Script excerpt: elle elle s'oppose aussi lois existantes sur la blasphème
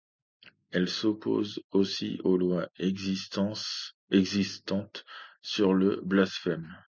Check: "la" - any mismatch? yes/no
yes